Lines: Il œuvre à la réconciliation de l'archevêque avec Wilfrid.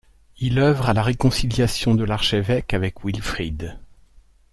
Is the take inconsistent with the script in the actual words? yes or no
no